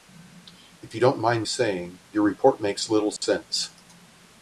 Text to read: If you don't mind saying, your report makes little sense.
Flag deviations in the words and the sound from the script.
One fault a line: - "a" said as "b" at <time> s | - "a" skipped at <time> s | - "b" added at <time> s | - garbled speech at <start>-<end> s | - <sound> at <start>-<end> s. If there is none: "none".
- dropout at 3.2-3.2 s